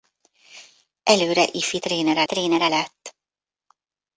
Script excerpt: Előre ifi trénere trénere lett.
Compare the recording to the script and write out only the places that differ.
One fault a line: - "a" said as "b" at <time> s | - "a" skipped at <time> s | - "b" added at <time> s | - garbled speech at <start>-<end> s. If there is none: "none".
none